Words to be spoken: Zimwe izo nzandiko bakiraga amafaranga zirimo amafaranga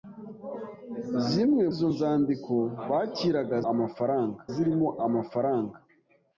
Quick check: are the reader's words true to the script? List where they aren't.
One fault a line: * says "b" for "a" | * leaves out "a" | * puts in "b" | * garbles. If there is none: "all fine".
all fine